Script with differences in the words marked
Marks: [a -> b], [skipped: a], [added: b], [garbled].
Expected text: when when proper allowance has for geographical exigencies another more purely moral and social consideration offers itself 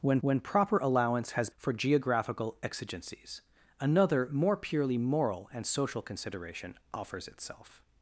when when proper allowance has for geographical exigencies another more purely moral and social consideration offers itself